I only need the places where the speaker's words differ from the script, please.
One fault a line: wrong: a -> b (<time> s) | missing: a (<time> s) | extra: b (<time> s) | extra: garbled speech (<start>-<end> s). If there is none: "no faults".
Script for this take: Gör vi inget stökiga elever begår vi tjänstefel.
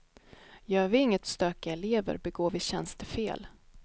no faults